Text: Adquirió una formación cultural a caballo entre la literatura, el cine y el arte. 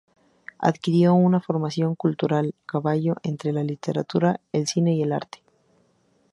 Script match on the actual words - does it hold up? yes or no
no